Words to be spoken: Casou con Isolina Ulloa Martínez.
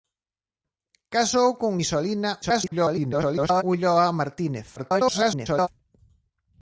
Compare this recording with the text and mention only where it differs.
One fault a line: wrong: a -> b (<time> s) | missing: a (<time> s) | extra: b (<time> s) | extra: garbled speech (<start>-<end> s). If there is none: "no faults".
extra: garbled speech (2.4-3.6 s)
extra: garbled speech (4.8-5.7 s)